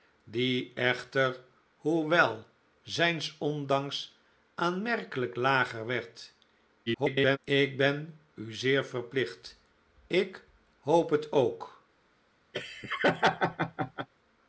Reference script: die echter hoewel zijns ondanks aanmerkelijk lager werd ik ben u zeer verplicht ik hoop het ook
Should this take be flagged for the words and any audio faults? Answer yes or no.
yes